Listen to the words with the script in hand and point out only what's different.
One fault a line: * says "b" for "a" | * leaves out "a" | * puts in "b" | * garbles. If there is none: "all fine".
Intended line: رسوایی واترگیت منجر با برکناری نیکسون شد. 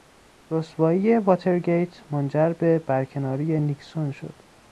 * says "به" for "با"